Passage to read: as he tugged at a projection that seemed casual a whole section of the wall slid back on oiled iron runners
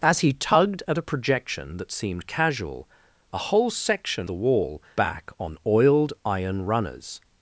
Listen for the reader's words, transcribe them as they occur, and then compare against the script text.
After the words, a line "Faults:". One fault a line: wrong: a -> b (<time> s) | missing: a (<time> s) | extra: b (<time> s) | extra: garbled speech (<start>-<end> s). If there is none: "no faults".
as he tugged at a projection that seemed casual a whole section the wall back on oiled iron runners
Faults:
missing: of (4.3 s)
missing: slid (4.8 s)